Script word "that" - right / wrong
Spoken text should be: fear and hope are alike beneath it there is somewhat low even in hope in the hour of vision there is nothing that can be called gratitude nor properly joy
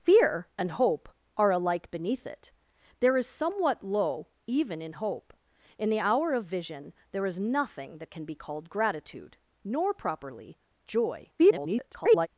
right